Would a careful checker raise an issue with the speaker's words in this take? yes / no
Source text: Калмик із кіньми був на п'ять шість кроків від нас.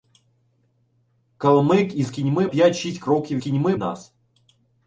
yes